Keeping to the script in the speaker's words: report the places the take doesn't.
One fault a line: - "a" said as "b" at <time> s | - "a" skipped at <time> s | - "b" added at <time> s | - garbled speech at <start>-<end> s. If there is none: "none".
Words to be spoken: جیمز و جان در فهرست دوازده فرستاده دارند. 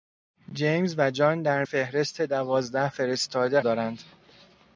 none